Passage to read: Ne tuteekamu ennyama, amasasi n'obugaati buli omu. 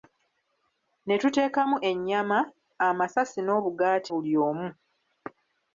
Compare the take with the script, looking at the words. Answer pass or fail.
pass